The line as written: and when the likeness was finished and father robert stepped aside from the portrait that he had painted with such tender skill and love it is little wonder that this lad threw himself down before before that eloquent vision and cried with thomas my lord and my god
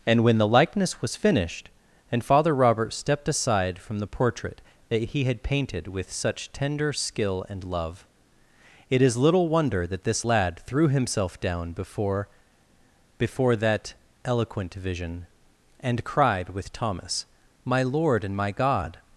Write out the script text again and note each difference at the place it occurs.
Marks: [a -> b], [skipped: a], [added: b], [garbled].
and when the likeness was finished and father robert stepped aside from the portrait that he had painted with such tender skill and love it is little wonder that this lad threw himself down before before that eloquent vision and cried with thomas my lord and my god